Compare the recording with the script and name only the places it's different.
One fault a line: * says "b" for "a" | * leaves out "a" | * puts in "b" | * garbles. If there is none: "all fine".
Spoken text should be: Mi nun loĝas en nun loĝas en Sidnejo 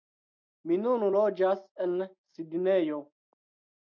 * leaves out "nun loĝas en"